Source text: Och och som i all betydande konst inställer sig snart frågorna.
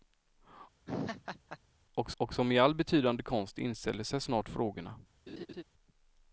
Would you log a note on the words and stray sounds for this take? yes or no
yes